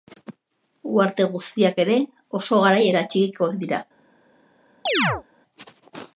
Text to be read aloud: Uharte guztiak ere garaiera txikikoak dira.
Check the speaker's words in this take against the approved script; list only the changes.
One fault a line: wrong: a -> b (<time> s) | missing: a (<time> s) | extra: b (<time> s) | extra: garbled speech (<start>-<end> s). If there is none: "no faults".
extra: oso (2.4 s)